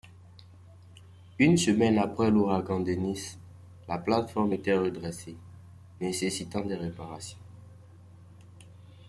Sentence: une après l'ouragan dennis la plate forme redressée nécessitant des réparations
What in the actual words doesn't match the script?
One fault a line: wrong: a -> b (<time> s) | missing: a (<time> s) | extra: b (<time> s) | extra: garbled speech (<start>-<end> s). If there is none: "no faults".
extra: semaine (1.5 s)
extra: était (4.5 s)